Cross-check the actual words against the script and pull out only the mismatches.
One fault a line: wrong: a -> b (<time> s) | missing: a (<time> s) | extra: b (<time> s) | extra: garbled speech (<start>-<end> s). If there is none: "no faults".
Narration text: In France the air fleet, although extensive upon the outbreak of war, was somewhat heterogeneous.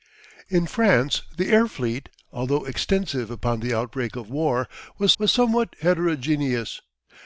extra: was (5.2 s)